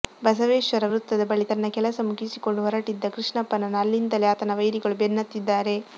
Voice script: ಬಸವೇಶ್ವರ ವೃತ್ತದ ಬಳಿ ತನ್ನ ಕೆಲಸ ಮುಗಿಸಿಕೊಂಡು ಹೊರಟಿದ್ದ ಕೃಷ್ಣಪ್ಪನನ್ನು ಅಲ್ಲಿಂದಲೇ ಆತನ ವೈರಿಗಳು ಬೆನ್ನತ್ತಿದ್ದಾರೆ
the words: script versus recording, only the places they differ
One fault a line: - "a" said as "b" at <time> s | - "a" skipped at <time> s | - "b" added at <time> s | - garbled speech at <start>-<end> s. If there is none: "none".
none